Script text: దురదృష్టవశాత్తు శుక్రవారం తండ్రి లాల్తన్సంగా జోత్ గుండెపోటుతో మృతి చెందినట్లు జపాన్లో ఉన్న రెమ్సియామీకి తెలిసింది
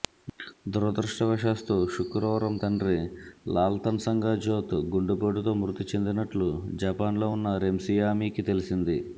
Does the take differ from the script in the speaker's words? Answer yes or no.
no